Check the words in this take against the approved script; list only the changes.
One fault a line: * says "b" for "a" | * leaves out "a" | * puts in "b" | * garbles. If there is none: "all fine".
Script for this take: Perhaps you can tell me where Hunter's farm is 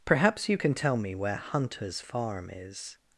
all fine